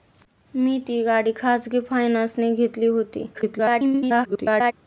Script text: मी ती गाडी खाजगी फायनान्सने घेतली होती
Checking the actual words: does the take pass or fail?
fail